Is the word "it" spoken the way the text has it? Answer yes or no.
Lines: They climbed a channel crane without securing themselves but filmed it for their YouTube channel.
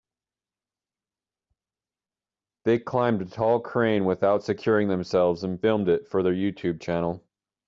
yes